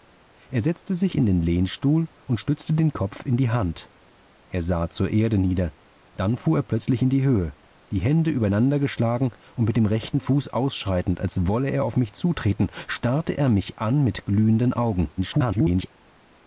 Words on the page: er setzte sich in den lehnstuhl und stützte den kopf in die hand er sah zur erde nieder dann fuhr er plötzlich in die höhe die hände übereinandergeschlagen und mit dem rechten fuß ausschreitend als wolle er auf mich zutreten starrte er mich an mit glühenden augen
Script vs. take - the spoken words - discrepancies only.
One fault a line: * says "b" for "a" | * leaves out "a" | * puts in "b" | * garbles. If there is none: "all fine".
* garbles